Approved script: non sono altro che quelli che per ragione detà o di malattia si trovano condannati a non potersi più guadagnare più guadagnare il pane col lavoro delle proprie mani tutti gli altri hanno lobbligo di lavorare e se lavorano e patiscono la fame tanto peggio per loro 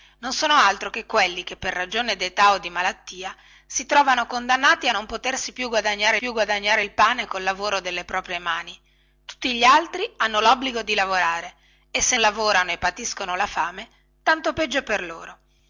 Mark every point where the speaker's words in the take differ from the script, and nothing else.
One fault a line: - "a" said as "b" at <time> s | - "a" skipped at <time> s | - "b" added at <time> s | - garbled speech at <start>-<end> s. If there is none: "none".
none